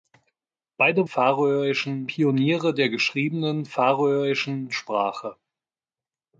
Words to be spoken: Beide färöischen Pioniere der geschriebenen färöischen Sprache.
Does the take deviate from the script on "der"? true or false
false